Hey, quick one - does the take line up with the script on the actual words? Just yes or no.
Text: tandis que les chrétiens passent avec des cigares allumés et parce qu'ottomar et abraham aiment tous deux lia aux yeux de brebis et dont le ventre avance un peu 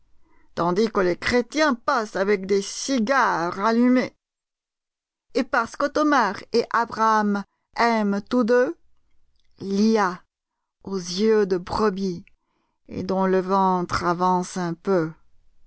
yes